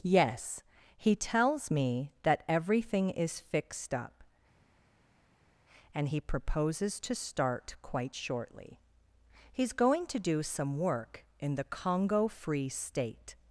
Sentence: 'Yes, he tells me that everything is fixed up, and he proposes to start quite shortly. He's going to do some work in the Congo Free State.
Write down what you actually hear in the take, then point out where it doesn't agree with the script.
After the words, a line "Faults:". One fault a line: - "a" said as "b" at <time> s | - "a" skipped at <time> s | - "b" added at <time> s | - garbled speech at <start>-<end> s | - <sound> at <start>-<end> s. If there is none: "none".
'Yes, he tells me that everything is fixed up, and he proposes to start quite shortly. He's going to do some work in the Congo Free State.
Faults:
none